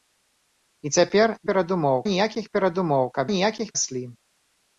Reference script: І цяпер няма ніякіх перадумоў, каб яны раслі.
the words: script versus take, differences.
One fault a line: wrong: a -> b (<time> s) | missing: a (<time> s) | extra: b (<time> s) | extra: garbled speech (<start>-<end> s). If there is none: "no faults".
wrong: няма -> перадумоў (1.5 s)
wrong: яны -> ніякіх (3.4 s)